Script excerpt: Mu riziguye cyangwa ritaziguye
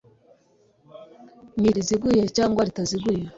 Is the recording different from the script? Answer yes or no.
no